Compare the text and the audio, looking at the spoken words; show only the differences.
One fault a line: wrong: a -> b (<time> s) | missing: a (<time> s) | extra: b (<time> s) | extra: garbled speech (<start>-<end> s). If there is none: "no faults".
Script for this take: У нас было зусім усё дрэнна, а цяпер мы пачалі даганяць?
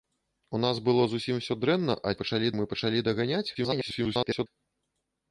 wrong: цяпер -> пачалі (2.2 s)
extra: garbled speech (3.5-4.5 s)